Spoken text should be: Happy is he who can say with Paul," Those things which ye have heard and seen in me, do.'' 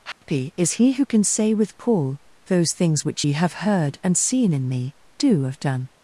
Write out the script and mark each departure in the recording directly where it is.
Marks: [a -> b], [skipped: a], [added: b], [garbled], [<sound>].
Happy [dropout] is he who can say with Paul," Those things which ye have heard and seen in me, do.'' [added: have done]